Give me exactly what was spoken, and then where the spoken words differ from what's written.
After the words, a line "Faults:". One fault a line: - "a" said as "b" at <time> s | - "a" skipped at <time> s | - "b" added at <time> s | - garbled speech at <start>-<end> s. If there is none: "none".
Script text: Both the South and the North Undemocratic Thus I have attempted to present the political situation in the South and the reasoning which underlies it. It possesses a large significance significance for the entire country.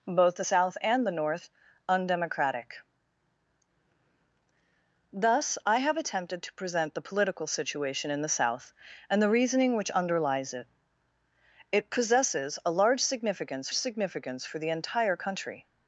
Both the South and the North Undemocratic Thus I have attempted to present the political situation in the South and the reasoning which underlies it. It possesses a large significance significance for the entire country.
Faults:
none